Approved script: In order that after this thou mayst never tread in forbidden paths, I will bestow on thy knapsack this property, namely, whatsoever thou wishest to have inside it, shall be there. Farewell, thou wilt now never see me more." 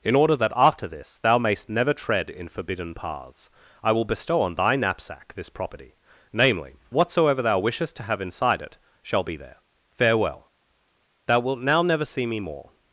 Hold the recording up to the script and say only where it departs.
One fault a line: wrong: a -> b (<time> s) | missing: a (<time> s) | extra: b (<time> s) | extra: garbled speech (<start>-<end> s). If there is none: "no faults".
no faults